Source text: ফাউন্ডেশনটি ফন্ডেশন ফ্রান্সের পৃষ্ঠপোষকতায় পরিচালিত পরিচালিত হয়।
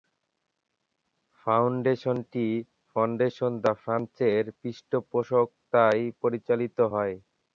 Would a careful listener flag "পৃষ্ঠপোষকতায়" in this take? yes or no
no